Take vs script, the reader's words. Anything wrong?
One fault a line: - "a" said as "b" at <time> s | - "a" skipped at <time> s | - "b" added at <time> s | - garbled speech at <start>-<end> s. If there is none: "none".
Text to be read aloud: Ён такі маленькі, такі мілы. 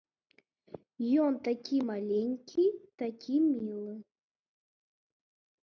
none